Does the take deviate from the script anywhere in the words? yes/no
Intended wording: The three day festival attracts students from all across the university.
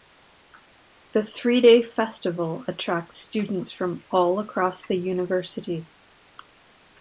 no